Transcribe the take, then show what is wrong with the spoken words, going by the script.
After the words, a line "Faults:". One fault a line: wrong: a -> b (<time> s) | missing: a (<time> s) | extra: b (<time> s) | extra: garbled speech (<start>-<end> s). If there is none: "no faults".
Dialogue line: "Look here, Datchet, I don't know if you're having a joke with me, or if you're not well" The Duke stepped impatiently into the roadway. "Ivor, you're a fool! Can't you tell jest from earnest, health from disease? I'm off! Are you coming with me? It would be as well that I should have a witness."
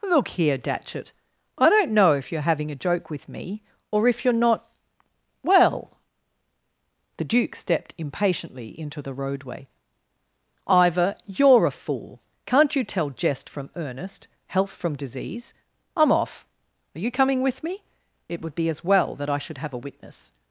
"Look here, Datchet, I don't know if you're having a joke with me, or if you're not well" The Duke stepped impatiently into the roadway. "Ivor, you're a fool! Can't you tell jest from earnest, health from disease? I'm off! Are you coming with me? It would be as well that I should have a witness."
Faults:
no faults